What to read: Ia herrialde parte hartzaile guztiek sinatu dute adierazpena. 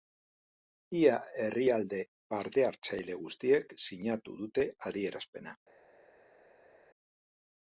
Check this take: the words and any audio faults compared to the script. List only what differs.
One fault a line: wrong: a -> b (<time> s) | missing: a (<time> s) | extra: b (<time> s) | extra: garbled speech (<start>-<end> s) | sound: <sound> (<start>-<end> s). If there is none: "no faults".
no faults